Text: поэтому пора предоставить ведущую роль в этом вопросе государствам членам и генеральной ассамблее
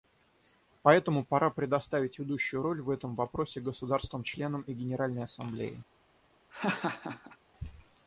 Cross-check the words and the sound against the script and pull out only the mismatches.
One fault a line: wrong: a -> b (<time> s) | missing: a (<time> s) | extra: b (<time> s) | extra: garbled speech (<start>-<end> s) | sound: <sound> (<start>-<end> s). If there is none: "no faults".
sound: laugh (6.5-7.4 s)